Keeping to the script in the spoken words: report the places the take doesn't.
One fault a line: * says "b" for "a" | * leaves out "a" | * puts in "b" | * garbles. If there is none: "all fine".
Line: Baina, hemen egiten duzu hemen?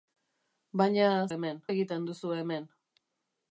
all fine